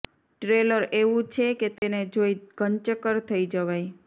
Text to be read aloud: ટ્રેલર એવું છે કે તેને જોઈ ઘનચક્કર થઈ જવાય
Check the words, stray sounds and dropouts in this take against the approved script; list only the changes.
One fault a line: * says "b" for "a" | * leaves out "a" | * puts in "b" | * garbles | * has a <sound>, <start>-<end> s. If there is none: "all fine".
* has a dropout, 1.8-1.8 s